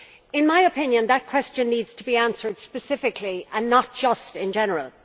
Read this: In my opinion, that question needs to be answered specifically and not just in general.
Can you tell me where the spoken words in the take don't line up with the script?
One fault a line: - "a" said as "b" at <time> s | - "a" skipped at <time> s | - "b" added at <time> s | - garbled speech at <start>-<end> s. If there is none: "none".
none